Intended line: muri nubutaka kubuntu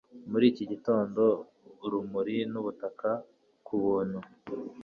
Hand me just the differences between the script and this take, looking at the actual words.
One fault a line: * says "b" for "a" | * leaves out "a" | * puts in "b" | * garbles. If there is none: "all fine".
* puts in "iki gitondo urumuri"